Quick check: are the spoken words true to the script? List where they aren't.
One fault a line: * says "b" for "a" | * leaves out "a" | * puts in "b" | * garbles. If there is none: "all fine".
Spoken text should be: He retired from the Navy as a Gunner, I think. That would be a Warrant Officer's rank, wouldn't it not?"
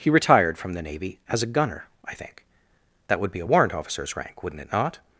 all fine